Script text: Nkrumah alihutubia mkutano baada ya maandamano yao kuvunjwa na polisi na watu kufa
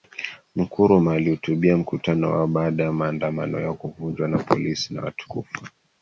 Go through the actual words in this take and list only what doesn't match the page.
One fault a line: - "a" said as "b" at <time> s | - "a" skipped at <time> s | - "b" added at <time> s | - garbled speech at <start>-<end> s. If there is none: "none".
- "wao" added at 2.3 s